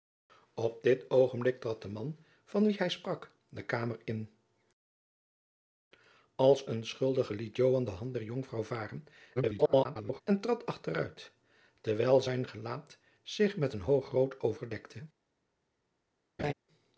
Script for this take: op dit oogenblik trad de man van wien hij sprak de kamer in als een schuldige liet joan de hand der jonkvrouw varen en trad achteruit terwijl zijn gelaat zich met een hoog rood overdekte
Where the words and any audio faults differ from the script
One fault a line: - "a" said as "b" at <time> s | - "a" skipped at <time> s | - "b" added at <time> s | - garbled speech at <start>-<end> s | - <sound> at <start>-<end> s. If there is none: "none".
- garbled speech at 9.4-10.2 s
- laugh at 16.4-16.5 s